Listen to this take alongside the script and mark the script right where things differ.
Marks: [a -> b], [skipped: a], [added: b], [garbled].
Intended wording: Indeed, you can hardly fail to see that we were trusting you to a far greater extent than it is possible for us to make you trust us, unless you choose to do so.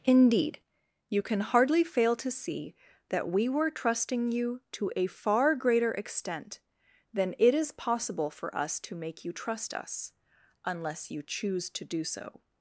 Indeed, you can hardly fail to see that we were trusting you to a far greater extent than it is possible for us to make you trust us, unless you choose to do so.